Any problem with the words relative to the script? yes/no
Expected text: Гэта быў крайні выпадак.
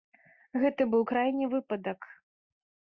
no